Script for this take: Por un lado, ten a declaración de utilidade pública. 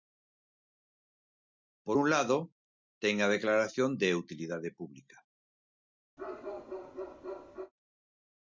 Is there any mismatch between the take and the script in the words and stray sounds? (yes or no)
yes